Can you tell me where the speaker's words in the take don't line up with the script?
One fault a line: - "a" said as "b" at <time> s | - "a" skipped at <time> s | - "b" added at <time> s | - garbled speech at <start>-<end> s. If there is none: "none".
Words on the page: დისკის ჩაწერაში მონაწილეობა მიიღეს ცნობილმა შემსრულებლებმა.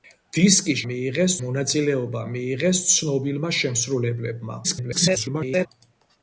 - "ჩაწერაში" said as "მიიღეს" at 0.9 s
- garbled speech at 4.6-5.7 s